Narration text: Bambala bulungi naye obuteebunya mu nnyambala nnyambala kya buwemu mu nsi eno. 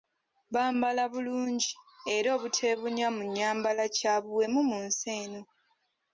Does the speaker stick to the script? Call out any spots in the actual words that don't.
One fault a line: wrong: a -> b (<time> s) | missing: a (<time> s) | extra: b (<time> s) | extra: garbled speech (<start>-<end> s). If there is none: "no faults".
wrong: naye -> era (2.1 s)
missing: nnyambala (3.8 s)